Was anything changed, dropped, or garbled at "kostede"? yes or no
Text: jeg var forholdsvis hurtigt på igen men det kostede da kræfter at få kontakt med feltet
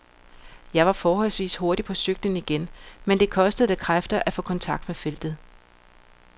no